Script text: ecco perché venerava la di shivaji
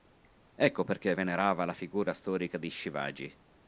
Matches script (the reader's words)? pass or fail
fail